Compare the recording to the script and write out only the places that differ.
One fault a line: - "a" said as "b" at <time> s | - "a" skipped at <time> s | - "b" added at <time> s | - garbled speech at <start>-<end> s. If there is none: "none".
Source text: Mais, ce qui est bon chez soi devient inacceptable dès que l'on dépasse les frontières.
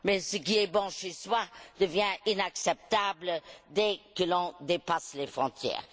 none